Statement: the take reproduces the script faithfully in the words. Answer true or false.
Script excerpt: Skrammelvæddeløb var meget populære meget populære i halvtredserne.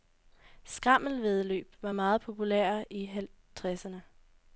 false